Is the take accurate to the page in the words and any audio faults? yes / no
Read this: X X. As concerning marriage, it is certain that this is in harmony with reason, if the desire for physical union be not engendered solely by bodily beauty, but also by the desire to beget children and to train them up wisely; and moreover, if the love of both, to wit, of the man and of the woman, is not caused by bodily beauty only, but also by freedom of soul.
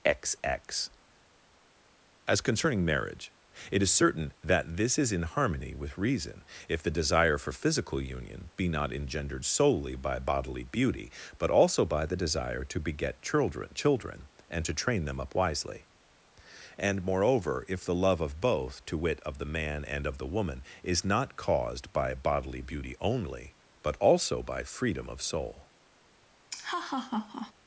no